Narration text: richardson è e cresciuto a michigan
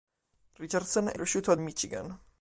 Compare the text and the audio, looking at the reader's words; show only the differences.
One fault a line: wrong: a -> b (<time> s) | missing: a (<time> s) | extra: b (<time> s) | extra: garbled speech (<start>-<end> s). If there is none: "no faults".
no faults